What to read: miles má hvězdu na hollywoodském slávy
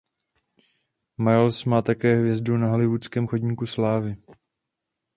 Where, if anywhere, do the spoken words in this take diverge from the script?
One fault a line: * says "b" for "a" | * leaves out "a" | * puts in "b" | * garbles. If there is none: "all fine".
* puts in "také"
* puts in "chodníku"